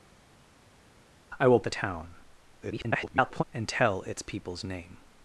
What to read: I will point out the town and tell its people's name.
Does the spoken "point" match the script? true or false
false